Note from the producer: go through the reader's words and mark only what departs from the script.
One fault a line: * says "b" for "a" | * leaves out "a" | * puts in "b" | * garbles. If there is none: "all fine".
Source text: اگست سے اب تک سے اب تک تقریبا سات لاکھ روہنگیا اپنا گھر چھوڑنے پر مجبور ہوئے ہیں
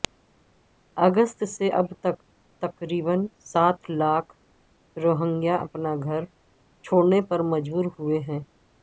* leaves out "سے اب تک"